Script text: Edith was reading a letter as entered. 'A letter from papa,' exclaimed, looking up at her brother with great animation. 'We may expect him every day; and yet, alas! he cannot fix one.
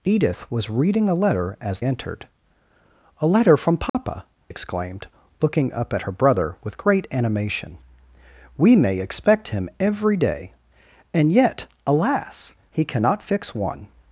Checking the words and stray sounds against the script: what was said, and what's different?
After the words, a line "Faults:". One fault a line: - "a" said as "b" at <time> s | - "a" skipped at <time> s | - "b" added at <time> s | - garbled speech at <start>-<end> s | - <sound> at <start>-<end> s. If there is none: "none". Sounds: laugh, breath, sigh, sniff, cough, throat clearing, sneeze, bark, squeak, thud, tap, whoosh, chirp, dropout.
Edith was reading a letter as entered. 'A letter from papa,' exclaimed, looking up at her brother with great animation. 'We may expect him every day; and yet, alas! he cannot fix one.
Faults:
- dropout at 3.9-3.9 s